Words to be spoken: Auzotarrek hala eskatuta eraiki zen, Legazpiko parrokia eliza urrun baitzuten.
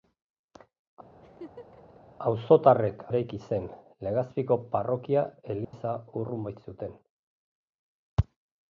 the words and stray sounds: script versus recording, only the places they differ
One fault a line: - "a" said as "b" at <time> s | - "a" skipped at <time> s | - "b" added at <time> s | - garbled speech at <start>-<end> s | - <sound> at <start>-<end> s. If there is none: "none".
- laugh at 1.2-2.0 s
- "hala eskatuta" skipped at 3.0 s
- dropout at 5.6-5.7 s